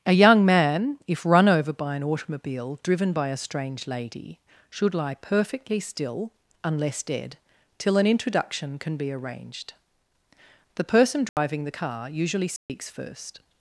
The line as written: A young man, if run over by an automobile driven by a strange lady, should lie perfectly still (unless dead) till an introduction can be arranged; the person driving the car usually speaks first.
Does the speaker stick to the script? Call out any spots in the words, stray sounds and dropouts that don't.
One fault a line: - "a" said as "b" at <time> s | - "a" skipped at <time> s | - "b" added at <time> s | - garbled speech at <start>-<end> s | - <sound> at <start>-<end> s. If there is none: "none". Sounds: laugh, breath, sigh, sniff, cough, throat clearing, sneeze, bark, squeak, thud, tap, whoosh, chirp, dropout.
- dropout at 11.3-11.4 s
- dropout at 12.6-12.7 s